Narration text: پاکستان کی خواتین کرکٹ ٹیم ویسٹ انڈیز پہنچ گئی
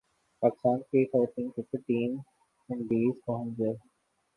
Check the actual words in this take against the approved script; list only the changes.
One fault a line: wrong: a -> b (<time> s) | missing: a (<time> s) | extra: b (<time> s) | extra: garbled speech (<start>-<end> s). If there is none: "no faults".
missing: ویسٹ (2.1 s)